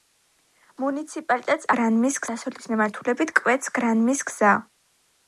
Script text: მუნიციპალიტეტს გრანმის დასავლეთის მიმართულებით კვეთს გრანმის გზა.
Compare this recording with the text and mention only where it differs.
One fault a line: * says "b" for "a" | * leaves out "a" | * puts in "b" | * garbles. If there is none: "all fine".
all fine